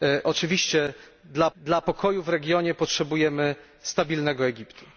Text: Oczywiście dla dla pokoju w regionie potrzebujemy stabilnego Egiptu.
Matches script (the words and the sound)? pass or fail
pass